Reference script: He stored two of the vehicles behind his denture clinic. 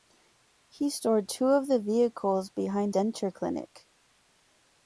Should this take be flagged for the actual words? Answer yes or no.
yes